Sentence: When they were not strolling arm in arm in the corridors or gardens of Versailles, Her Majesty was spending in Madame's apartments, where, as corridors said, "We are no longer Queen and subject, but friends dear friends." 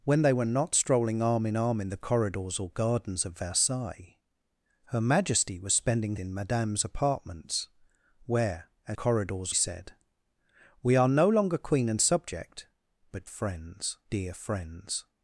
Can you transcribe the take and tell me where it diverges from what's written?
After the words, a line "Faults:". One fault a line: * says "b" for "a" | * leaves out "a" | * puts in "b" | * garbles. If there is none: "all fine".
When they were not strolling arm in arm in the corridors or gardens of Versailles, Her Majesty was spending in Madame's apartments, where, as corridors said, "We are no longer Queen and subject, but friends dear friends."
Faults:
all fine